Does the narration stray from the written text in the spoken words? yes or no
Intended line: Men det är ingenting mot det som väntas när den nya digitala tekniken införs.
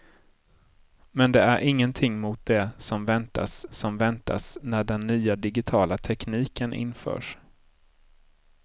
yes